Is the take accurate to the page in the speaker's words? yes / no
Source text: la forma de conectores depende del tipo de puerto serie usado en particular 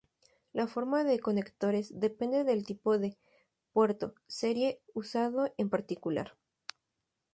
yes